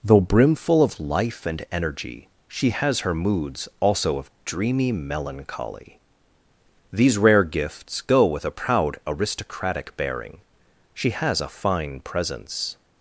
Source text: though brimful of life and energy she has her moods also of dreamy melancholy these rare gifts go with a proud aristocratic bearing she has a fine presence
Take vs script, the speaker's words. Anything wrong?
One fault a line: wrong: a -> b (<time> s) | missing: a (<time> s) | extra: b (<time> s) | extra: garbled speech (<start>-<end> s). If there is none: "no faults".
no faults